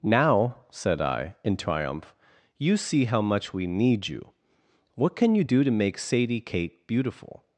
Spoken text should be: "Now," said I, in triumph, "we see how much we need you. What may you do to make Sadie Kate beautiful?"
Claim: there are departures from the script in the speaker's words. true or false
true